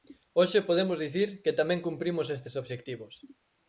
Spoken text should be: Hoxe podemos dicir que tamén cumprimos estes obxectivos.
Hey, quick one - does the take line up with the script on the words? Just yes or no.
yes